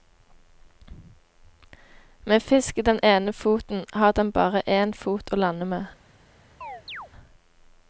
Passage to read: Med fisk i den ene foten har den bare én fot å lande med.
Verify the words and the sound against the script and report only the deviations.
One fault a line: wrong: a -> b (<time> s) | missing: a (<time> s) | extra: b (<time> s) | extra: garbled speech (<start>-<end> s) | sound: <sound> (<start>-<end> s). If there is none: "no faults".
sound: chirp (6.6-7.1 s)